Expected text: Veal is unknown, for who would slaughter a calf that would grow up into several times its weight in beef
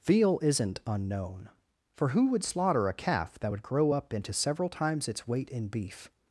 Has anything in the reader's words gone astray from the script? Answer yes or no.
yes